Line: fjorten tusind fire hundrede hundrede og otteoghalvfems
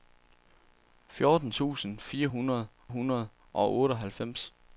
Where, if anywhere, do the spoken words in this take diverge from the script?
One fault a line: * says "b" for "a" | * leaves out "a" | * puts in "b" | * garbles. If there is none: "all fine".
all fine